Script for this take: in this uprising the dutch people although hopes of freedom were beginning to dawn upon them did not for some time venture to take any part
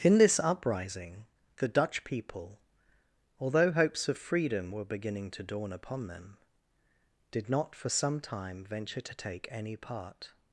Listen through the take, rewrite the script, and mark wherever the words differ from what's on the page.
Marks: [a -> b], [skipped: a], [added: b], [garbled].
in this uprising the dutch people although hopes of freedom were beginning to dawn upon them did not for some time venture to take any part